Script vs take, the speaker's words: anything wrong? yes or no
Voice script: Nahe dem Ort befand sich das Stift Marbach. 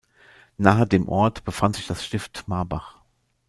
no